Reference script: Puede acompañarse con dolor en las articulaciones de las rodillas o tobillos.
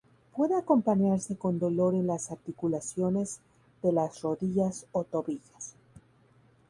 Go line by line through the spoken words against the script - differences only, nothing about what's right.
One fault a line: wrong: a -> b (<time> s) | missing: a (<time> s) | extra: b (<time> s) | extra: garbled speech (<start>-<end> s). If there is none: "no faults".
no faults